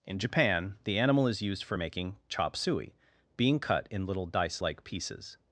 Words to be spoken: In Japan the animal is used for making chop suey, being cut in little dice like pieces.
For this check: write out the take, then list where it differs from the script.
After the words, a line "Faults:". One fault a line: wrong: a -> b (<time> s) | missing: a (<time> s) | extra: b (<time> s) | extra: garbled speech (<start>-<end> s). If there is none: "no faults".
In Japan the animal is used for making chop suey, being cut in little dice like pieces.
Faults:
no faults